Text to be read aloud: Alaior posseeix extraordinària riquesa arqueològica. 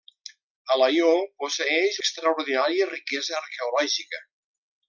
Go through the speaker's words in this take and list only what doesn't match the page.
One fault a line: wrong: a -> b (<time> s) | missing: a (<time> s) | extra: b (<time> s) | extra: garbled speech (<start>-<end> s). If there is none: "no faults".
no faults